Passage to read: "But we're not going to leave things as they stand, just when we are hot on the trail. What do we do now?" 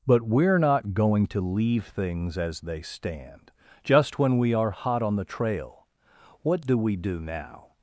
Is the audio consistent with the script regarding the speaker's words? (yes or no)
yes